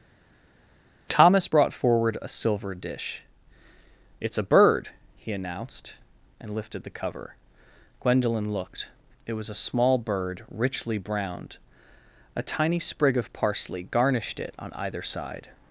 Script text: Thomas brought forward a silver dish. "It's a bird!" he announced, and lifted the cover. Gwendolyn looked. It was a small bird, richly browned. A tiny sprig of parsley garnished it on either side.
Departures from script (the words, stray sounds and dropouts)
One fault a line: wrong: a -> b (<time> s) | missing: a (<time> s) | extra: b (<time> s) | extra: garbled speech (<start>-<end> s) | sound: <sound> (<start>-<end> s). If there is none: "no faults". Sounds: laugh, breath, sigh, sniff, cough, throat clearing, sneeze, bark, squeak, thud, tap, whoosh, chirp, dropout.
no faults